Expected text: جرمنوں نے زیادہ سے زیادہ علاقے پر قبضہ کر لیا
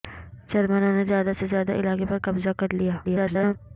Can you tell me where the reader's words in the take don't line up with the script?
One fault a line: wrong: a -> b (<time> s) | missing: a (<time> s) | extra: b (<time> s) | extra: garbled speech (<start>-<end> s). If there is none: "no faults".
extra: garbled speech (3.0-3.6 s)